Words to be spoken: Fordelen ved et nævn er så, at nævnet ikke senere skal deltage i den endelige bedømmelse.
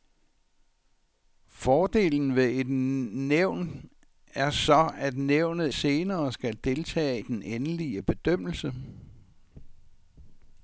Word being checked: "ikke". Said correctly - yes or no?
no